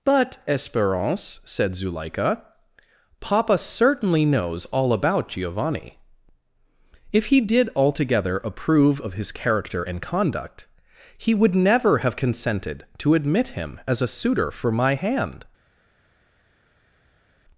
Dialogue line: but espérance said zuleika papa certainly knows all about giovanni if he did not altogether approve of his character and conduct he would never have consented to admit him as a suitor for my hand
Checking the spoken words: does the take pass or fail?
fail